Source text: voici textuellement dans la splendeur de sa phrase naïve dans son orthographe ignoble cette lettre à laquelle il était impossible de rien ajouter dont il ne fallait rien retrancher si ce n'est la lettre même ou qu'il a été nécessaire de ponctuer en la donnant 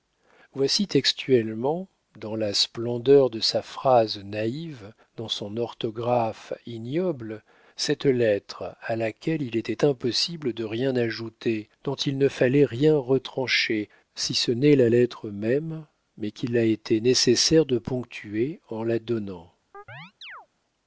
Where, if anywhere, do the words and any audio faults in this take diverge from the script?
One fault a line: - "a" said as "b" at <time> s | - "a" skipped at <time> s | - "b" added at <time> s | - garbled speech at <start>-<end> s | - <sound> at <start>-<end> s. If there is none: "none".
- "ou" said as "mais" at 16.2 s
- chirp at 19.7-20.5 s